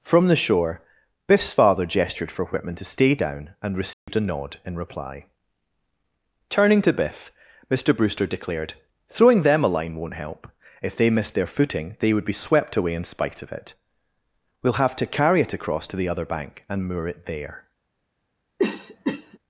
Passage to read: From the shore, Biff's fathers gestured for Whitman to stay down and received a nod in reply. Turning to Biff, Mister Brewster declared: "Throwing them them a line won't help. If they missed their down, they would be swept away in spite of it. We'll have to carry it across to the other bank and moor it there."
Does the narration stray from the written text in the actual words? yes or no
yes